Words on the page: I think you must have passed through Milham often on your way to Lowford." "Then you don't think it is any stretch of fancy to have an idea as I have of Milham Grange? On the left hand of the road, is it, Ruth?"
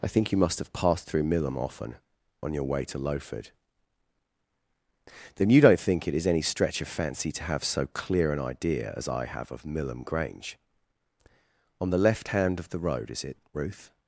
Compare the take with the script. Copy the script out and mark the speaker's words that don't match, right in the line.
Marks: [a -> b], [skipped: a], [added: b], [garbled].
I think you must have passed through Milham often on your way to Lowford." "Then you don't think it is any stretch of fancy to have [added: so clear] an idea as I have of Milham Grange? On the left hand of the road, is it, Ruth?"